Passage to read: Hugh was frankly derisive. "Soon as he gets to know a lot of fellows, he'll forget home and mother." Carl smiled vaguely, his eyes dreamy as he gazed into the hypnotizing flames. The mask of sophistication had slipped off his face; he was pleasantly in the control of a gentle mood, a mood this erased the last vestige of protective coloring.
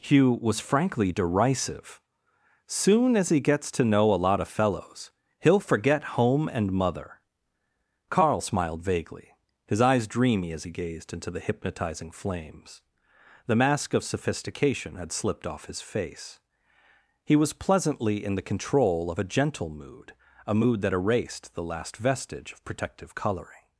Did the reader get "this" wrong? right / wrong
wrong